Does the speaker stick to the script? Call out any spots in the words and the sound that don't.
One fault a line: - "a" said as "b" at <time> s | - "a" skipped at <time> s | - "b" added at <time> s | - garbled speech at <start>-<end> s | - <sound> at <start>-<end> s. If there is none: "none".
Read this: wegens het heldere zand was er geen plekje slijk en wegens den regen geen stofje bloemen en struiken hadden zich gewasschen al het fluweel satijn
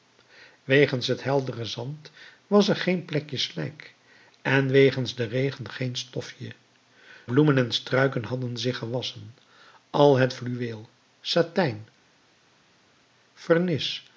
none